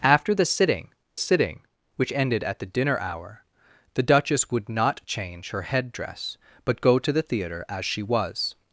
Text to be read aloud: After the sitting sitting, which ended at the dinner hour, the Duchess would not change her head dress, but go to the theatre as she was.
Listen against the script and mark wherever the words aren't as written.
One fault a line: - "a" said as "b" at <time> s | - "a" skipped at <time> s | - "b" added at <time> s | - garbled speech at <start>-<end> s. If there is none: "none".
none